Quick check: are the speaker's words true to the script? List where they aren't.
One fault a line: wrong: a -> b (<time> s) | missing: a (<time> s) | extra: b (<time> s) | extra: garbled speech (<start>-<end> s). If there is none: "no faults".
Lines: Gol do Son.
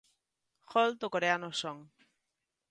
extra: coreano (1.1 s)